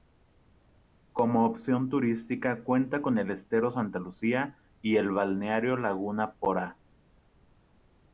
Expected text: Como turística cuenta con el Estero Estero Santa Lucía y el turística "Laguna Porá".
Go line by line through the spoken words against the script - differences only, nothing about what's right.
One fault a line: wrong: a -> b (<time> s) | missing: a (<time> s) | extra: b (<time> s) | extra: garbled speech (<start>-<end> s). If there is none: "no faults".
extra: opción (1.4 s)
missing: Estero (3.7 s)
wrong: turística -> balneario (5.1 s)